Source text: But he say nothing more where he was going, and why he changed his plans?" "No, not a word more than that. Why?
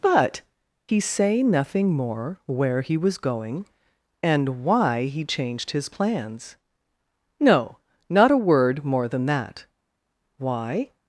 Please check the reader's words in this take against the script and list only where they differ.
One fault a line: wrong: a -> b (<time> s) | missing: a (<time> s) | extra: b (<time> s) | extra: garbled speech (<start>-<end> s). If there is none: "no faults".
no faults